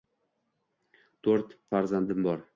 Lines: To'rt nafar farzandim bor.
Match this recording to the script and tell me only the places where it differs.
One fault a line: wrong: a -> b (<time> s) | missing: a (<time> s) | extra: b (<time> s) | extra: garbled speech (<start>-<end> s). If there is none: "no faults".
missing: nafar (1.6 s)